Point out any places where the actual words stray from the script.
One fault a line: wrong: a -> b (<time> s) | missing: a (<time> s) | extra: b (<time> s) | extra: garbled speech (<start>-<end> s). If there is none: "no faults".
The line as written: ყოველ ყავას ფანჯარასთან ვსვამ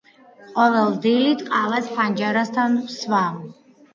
extra: დილით (1.0 s)